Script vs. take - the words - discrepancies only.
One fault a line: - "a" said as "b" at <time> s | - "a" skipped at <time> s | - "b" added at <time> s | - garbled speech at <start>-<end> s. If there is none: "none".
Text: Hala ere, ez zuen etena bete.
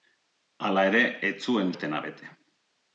none